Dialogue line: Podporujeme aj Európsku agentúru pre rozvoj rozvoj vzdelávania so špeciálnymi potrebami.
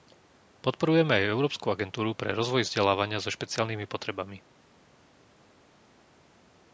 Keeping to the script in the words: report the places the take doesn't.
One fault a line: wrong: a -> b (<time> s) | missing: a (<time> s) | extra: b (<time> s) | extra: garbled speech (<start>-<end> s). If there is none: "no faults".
missing: rozvoj (2.6 s)